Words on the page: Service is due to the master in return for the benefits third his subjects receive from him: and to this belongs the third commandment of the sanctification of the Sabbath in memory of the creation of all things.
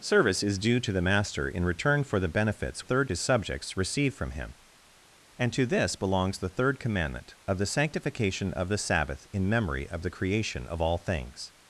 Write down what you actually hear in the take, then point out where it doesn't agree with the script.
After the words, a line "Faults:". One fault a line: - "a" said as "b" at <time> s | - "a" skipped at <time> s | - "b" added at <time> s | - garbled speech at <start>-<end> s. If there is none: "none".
Service is due to the master in return for the benefits third his subjects receive from him: and to this belongs the third commandment of the sanctification of the Sabbath in memory of the creation of all things.
Faults:
none